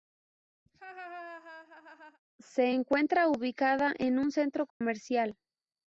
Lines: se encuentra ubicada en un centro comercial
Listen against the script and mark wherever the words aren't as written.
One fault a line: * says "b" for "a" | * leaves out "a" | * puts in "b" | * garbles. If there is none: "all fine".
all fine